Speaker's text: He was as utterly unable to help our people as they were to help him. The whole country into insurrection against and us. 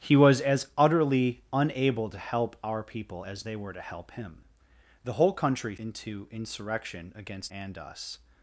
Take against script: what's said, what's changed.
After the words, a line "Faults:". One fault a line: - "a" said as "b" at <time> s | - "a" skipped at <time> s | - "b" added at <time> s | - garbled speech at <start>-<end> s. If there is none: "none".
He was as utterly unable to help our people as they were to help him. The whole country into insurrection against and us.
Faults:
none